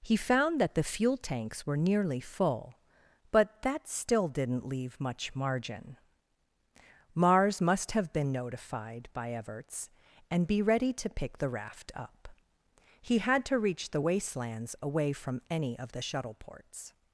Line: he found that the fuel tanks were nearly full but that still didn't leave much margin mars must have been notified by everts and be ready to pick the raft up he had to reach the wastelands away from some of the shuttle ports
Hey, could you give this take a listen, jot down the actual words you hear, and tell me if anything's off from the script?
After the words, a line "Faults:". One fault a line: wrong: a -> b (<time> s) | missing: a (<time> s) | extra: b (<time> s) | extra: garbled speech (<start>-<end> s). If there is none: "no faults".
he found that the fuel tanks were nearly full but that still didn't leave much margin mars must have been notified by everts and be ready to pick the raft up he had to reach the wastelands away from any of the shuttle ports
Faults:
wrong: some -> any (15.5 s)